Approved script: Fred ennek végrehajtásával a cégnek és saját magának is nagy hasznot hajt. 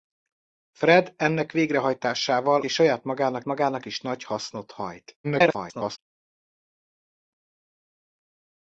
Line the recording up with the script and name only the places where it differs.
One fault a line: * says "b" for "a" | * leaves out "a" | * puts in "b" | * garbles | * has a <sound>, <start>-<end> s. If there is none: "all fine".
* leaves out "a cégnek"
* puts in "magának"
* garbles